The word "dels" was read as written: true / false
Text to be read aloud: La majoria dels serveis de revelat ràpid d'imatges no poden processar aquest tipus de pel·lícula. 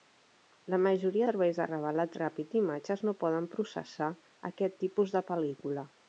false